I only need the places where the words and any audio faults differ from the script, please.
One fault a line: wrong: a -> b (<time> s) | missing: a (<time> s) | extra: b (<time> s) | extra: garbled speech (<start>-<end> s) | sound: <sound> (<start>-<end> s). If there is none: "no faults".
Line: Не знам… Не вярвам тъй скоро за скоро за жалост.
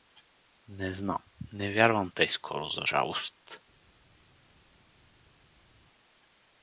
missing: скоро за (2.8 s)